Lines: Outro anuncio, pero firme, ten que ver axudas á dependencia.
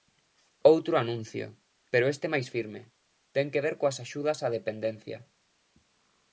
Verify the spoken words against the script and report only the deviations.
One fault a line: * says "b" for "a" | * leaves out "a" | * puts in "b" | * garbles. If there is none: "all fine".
* puts in "este máis"
* puts in "coas"